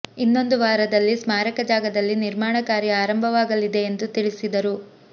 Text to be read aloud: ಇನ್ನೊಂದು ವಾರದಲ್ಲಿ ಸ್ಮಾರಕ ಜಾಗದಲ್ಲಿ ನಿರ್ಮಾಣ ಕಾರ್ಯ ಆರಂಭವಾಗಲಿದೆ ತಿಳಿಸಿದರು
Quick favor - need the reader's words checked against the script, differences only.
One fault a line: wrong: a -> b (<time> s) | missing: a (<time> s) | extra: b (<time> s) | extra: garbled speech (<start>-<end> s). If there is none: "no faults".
extra: ಎಂದು (3.8 s)